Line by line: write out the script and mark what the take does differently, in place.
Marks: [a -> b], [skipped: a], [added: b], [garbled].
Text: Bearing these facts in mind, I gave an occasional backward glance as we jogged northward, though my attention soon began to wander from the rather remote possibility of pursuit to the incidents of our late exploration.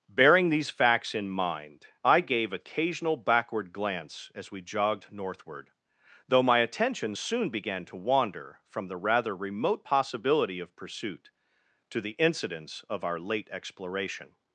Bearing these facts in mind, I gave [skipped: an] occasional backward glance as we jogged northward, though my attention soon began to wander from the rather remote possibility of pursuit to the incidents of our late exploration.